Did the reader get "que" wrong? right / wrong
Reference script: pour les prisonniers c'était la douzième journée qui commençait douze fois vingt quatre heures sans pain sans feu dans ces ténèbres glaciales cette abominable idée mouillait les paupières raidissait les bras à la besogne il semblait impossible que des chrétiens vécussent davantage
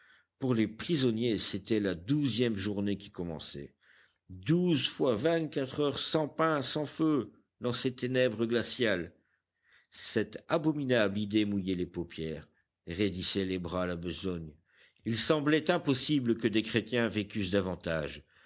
right